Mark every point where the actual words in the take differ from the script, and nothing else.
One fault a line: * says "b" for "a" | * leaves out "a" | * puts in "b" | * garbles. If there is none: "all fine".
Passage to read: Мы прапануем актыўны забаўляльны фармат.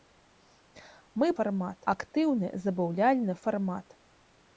* says "фармат" for "прапануем"